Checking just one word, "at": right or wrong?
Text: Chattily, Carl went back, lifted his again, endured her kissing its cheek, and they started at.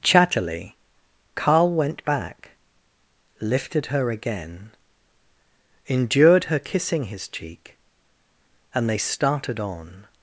wrong